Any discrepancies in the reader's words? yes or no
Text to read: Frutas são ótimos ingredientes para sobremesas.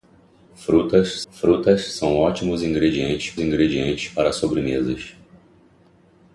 yes